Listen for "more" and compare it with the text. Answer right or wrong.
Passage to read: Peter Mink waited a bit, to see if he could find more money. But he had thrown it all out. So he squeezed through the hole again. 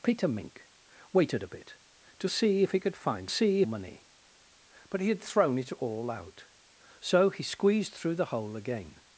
wrong